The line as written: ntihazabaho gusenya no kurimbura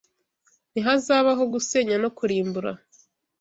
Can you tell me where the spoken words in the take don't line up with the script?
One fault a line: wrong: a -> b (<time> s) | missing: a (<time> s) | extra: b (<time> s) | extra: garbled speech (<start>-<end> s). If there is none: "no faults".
no faults